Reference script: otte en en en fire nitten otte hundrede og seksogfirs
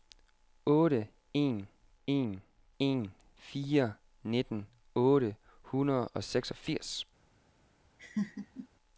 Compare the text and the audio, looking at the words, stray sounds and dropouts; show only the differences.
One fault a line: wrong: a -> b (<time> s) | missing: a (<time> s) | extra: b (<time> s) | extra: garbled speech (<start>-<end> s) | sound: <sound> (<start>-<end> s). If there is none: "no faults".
sound: laugh (8.0-8.7 s)